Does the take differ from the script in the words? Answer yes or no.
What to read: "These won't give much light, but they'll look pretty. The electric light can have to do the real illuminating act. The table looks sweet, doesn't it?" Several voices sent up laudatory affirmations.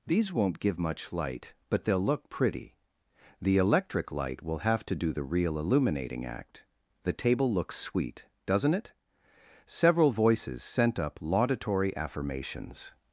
yes